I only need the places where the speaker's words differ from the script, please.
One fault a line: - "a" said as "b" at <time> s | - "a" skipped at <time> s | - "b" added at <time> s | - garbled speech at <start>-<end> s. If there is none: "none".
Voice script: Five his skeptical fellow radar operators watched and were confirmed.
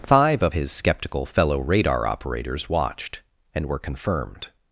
- "of" added at 0.4 s